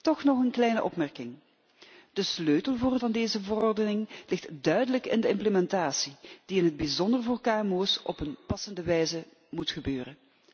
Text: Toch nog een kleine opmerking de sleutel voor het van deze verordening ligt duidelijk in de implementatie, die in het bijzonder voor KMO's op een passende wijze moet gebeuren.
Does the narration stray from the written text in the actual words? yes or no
no